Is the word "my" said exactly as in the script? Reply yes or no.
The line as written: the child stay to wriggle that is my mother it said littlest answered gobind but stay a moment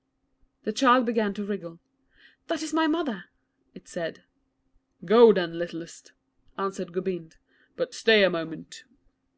yes